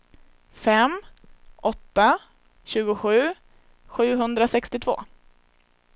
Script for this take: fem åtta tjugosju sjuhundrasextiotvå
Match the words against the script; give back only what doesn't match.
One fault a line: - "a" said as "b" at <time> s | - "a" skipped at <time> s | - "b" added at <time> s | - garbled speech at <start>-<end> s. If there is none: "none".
none